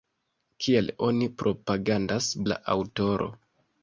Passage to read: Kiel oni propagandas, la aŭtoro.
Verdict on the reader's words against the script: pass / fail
pass